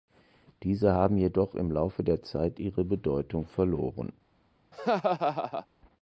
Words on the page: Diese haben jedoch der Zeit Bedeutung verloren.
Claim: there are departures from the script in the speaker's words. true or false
true